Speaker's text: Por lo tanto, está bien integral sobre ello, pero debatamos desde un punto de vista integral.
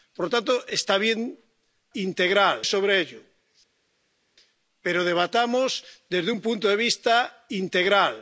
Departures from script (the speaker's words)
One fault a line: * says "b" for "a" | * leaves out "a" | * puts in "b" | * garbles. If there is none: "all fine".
all fine